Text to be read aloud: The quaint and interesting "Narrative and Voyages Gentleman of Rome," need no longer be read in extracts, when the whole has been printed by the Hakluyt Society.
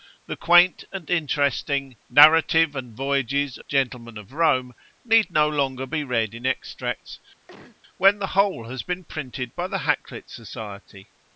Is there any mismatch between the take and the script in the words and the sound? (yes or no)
yes